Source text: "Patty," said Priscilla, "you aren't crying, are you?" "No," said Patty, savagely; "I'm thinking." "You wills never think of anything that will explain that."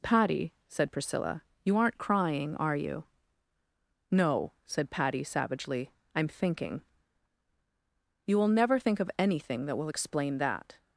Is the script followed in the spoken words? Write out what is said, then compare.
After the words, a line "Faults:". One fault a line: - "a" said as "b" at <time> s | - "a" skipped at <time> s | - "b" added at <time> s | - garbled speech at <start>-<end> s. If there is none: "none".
"Patty," said Priscilla, "you aren't crying, are you?" "No," said Patty, savagely; "I'm thinking." "You will never think of anything that will explain that."
Faults:
- "wills" said as "will" at 8.4 s